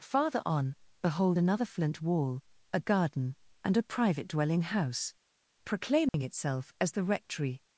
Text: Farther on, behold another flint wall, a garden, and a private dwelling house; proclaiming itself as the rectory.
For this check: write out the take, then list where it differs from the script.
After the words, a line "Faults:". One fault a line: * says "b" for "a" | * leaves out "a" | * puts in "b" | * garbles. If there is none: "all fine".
Farther on, behold another flint wall, a garden, and a private dwelling house; proclaiming itself as the rectory.
Faults:
all fine